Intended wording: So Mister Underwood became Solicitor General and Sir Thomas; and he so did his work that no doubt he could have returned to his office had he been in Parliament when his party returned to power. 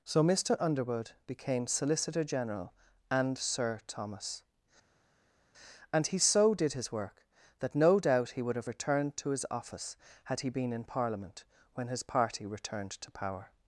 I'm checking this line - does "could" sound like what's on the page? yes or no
no